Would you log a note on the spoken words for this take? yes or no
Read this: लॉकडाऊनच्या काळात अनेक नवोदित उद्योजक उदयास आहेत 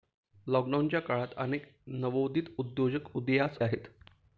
no